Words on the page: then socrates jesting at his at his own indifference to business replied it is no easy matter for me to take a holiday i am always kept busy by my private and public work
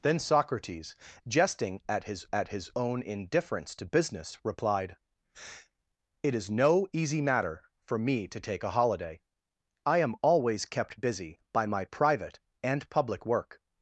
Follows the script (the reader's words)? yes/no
yes